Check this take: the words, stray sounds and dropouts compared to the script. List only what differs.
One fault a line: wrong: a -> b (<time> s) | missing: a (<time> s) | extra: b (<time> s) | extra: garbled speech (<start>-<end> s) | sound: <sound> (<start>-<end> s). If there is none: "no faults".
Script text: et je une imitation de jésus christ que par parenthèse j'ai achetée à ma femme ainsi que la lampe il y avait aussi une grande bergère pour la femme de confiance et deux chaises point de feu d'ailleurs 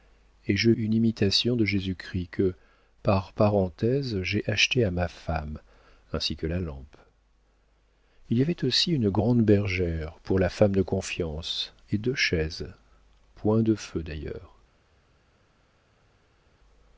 no faults